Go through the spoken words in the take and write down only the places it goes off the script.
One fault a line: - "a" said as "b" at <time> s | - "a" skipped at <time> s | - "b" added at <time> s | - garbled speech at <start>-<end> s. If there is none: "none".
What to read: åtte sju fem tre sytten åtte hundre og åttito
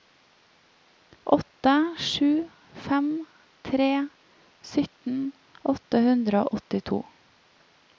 none